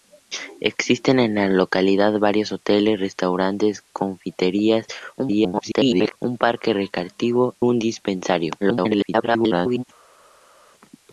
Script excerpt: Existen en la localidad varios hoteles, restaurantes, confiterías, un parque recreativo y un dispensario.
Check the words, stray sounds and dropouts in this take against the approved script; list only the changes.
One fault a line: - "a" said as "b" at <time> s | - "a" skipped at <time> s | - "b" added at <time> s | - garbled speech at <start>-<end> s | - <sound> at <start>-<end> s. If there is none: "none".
- garbled speech at 5.2-6.2 s
- "y" skipped at 7.5 s
- garbled speech at 8.6-9.8 s